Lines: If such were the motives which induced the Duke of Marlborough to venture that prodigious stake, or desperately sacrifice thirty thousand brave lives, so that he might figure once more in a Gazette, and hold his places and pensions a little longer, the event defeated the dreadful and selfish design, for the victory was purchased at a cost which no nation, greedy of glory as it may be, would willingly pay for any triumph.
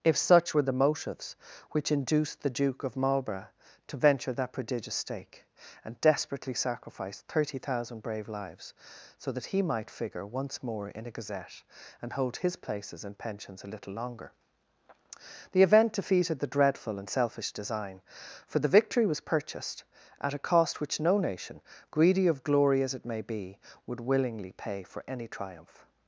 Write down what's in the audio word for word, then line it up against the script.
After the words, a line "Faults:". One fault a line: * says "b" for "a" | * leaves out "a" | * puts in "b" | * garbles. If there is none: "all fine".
If such were the motives which induced the Duke of Marlborough to venture that prodigious stake, and desperately sacrifice thirty thousand brave lives, so that he might figure once more in a Gazette, and hold his places and pensions a little longer, the event defeated the dreadful and selfish design, for the victory was purchased at a cost which no nation, greedy of glory as it may be, would willingly pay for any triumph.
Faults:
* says "and" for "or"